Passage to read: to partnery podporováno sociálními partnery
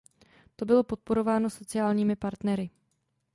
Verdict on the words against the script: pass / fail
fail